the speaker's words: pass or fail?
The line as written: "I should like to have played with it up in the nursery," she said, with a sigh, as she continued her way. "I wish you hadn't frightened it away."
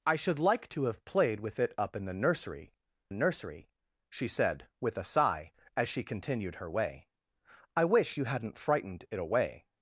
fail